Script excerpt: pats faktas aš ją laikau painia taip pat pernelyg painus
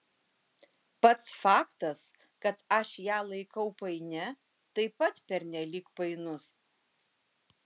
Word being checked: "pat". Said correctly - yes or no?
yes